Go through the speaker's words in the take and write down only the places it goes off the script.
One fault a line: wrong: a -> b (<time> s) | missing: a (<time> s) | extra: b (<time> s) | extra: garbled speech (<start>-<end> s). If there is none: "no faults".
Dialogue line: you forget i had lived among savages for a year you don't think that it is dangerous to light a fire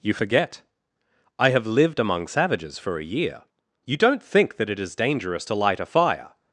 wrong: had -> have (1.5 s)